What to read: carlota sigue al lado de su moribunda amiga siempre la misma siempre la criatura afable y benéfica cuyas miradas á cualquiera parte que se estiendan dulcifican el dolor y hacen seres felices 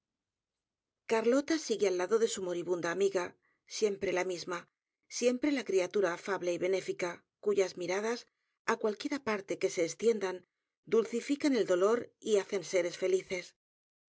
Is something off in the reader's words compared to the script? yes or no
no